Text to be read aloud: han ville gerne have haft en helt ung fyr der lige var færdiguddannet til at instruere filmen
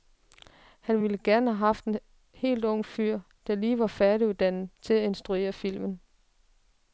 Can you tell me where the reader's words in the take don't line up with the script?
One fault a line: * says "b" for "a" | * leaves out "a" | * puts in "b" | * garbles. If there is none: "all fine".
all fine